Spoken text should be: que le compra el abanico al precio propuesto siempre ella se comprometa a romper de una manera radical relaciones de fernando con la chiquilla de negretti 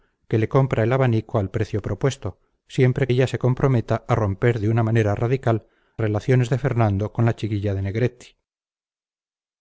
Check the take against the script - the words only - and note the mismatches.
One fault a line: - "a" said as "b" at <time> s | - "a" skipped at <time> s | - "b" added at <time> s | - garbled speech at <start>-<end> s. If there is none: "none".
none